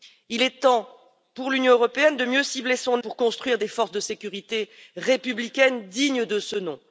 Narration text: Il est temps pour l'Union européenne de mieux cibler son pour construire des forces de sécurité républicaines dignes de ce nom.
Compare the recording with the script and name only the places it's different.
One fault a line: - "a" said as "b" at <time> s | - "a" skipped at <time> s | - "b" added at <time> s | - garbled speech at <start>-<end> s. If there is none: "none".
none